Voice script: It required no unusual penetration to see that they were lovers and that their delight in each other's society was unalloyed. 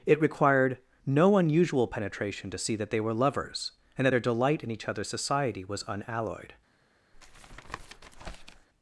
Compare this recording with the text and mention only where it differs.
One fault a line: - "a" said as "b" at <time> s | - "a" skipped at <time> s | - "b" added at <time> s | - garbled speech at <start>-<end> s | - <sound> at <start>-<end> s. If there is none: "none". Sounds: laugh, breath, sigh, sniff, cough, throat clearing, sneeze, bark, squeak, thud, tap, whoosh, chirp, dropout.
- tap at 7.1-8.7 s